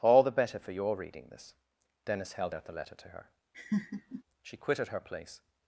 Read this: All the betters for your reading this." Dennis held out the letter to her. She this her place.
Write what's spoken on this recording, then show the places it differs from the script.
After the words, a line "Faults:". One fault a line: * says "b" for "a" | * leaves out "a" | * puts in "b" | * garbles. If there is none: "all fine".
All the better for your reading this." Dennis held out the letter to her. She quitted her place.
Faults:
* says "better" for "betters"
* says "quitted" for "this"